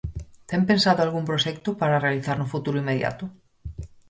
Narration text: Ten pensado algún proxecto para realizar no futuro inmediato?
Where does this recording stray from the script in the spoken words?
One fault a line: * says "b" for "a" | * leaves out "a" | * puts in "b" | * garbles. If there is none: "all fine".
all fine